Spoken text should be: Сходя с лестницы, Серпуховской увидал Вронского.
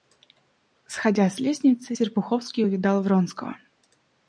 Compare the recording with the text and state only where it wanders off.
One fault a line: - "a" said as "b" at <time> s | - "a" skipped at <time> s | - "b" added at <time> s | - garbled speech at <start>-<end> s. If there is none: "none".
none